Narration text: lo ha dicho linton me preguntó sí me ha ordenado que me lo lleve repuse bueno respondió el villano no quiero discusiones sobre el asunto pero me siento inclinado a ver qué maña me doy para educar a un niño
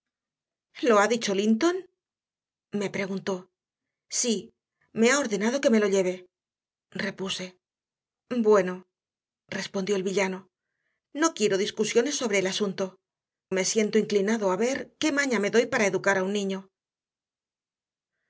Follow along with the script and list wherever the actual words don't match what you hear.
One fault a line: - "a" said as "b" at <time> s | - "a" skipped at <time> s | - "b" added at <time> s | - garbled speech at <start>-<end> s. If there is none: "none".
- "pero" skipped at 13.0 s